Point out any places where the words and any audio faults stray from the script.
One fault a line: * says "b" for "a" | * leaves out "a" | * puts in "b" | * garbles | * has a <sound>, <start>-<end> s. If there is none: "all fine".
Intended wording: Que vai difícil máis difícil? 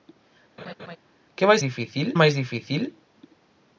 * has a laugh, 0.6-1.0 s